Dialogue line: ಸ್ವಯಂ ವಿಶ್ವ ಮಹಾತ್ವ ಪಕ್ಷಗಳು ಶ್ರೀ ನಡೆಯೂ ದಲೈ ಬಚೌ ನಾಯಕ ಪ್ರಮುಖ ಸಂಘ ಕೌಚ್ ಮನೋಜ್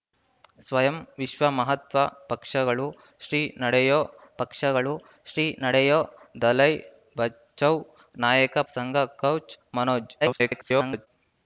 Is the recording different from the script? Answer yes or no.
yes